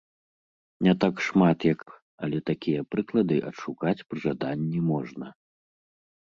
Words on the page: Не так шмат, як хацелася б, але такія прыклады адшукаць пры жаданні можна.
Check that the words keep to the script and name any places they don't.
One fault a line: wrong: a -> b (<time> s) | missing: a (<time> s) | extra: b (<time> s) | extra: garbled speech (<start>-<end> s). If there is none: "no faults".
missing: хацелася (1.8 s)